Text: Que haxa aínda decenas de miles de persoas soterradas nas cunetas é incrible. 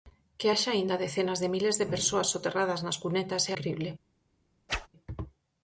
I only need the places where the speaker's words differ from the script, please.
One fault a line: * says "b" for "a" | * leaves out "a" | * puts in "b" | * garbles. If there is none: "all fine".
all fine